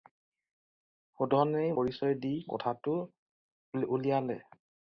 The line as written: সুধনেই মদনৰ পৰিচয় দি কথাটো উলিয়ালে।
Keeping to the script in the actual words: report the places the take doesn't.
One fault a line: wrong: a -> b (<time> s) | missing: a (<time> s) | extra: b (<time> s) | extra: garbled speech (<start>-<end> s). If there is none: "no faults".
missing: মদনৰ (1.8 s)